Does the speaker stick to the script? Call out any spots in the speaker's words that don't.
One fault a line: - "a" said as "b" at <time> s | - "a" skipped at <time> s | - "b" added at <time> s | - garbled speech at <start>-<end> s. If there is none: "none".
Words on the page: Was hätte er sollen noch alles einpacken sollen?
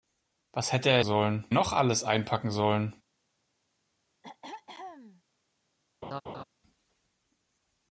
none